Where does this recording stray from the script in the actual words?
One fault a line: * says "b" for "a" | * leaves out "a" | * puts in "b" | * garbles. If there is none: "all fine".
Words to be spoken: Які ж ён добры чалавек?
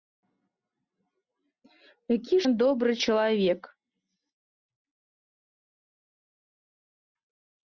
* leaves out "ж"